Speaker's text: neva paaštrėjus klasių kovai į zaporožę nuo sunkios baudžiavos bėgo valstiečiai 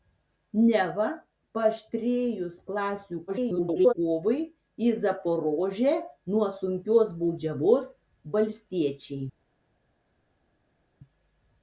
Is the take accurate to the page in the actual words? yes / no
no